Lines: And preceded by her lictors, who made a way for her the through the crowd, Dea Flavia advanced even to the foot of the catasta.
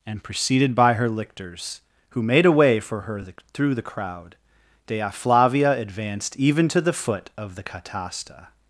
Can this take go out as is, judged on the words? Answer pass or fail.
pass